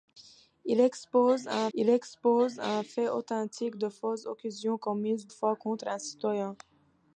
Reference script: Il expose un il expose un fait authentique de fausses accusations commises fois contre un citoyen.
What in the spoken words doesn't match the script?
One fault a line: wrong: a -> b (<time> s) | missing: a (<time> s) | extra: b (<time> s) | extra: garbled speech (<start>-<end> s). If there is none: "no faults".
no faults